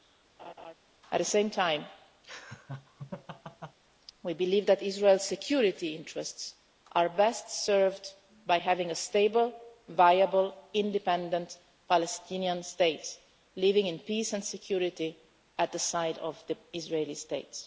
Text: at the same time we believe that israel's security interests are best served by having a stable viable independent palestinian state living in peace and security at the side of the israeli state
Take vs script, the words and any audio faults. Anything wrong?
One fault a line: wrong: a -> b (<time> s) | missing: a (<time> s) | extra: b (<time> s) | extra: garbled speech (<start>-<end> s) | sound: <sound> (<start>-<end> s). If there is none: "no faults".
sound: laugh (0.4-0.7 s)
sound: laugh (2.2-3.8 s)